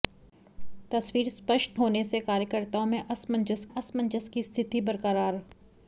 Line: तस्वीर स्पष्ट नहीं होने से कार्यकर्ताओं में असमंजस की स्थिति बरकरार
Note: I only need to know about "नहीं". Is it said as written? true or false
false